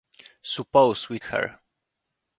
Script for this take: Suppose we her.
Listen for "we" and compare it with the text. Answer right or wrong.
right